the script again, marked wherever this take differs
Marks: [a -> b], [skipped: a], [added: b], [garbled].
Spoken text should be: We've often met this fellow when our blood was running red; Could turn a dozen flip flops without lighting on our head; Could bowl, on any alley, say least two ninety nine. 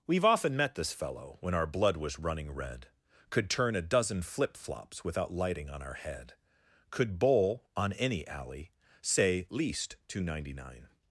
We've often met this fellow when our blood was running red; Could turn a dozen flip flops without lighting on our head; Could bowl, on any alley, say least two ninety nine.